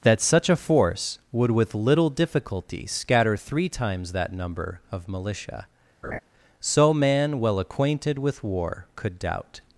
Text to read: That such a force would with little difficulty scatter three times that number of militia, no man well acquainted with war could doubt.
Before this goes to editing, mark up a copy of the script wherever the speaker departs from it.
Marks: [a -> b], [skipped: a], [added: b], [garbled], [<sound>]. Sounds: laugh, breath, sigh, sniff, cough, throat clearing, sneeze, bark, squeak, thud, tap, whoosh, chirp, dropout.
That such a force would with little difficulty scatter three times that number of militia, [laugh] [no -> so] man well acquainted with war could doubt.